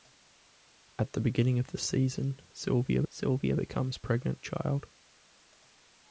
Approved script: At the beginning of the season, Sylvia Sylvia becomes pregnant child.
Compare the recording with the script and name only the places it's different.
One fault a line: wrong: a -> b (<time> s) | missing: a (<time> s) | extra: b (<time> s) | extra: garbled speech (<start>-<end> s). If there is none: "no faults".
no faults